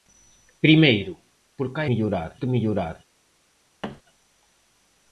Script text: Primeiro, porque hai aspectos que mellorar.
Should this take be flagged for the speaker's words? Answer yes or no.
yes